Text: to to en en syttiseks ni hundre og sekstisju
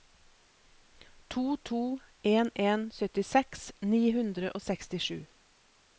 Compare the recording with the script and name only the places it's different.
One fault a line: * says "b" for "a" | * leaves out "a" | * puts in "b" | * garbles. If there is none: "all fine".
all fine